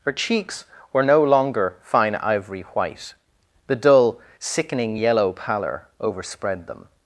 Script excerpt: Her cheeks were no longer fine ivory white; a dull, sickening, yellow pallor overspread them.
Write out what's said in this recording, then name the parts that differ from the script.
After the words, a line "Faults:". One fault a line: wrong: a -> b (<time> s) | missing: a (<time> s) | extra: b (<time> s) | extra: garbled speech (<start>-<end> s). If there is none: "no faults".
Her cheeks were no longer fine ivory white; the dull, sickening, yellow pallor overspread them.
Faults:
wrong: a -> the (3.7 s)